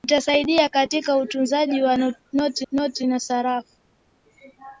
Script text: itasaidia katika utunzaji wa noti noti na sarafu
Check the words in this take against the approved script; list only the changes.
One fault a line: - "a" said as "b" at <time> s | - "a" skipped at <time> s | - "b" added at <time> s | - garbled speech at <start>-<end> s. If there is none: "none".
none